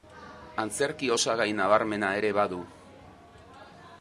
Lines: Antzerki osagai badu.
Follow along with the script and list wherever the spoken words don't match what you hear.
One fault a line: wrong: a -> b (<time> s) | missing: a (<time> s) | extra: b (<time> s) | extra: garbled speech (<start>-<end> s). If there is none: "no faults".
extra: nabarmena ere (1.6 s)